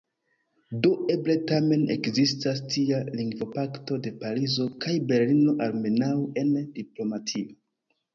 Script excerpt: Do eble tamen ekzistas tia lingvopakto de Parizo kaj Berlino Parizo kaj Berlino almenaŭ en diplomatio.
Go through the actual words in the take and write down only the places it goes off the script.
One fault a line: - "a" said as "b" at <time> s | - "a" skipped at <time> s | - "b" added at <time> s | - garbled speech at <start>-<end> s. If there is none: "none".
- "Parizo kaj Berlino" skipped at 5.6 s